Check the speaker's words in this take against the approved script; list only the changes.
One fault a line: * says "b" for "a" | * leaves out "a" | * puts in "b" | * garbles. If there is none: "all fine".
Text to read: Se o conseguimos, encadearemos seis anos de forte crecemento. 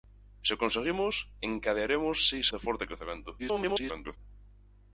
* leaves out "anos"
* garbles